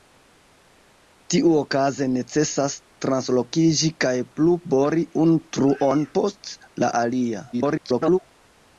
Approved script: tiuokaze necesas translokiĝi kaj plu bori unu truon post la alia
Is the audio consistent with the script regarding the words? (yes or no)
no